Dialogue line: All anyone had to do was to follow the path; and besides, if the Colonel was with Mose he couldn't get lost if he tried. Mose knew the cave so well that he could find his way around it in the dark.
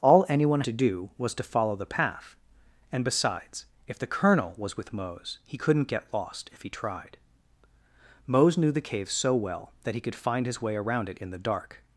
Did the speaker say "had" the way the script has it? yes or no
no